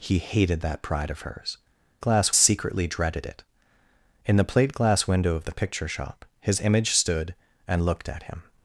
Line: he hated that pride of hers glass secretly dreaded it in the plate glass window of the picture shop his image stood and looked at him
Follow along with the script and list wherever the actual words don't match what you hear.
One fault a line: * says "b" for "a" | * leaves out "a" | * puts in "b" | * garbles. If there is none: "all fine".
all fine